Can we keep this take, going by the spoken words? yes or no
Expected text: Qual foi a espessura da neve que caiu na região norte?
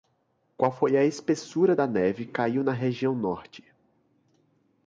no